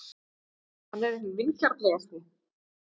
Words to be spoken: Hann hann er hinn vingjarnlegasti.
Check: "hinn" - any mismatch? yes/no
no